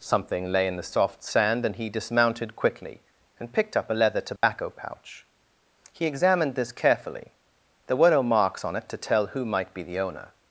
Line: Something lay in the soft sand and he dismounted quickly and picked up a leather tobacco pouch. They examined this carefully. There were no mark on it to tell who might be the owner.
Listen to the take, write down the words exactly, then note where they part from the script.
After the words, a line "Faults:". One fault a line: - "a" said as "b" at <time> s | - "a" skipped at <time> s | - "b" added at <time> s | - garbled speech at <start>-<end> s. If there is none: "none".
Something lay in the soft sand and he dismounted quickly and picked up a leather tobacco pouch. He examined this carefully. There were no marks on it to tell who might be the owner.
Faults:
- "They" said as "He" at 5.9 s
- "mark" said as "marks" at 8.2 s